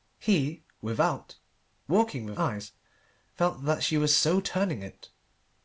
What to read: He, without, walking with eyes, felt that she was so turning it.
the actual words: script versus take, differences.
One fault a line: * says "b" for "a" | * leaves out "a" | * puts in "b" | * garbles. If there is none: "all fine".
all fine